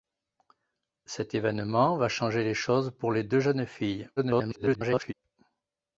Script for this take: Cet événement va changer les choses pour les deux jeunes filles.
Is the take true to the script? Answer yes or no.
no